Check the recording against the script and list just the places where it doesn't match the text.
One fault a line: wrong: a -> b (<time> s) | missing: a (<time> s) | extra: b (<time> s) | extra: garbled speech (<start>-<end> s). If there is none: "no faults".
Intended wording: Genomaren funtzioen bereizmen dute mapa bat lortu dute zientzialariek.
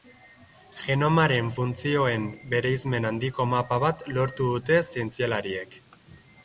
wrong: dute -> handiko (3.1 s)